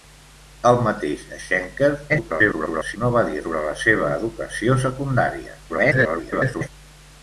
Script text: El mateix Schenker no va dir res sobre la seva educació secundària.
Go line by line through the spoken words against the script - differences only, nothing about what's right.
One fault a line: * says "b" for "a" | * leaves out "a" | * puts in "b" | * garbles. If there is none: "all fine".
* garbles
* leaves out "res"
* garbles